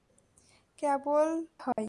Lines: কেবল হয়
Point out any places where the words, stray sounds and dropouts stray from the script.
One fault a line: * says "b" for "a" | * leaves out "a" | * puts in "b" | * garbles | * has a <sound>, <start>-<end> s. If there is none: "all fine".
* has a dropout, 1.7-1.8 s